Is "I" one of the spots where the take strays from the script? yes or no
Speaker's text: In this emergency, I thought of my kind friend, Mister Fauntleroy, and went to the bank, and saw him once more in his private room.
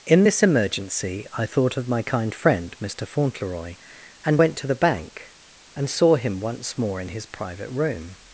no